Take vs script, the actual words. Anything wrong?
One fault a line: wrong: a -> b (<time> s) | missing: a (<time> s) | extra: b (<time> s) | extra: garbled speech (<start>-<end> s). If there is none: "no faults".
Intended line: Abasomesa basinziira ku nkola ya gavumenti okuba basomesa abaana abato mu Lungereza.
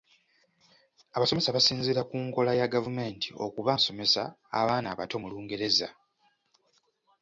no faults